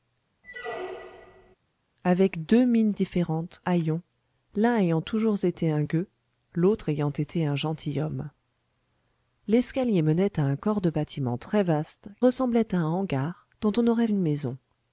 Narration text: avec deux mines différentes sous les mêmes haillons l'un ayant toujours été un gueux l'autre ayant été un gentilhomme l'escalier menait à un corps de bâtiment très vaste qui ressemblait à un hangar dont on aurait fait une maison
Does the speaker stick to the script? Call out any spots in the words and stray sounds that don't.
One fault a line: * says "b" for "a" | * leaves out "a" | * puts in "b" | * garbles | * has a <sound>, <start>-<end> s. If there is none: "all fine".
* has a squeak, 0.4-1.6 s
* leaves out "sous les mêmes"
* leaves out "qui"
* leaves out "fait"